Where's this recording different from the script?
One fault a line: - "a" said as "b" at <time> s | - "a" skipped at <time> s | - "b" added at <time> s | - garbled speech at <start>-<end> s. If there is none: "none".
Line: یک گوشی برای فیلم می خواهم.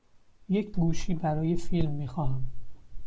none